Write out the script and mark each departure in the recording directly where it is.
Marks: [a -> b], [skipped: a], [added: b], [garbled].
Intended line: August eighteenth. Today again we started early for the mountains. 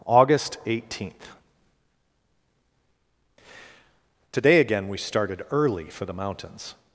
August eighteenth. Today again we started early for the mountains.